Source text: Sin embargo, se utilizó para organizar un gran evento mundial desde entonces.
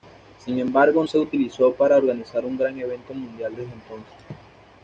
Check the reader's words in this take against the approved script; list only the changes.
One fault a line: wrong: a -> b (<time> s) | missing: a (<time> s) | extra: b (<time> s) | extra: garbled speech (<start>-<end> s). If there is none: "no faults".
no faults